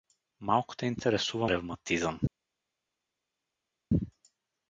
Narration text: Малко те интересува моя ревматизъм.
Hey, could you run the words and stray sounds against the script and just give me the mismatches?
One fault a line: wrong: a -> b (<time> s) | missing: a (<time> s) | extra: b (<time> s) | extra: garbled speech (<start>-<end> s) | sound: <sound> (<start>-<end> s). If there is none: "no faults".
missing: моя (1.5 s)